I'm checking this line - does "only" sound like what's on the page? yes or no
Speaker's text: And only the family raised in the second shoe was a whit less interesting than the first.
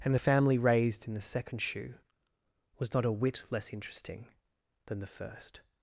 no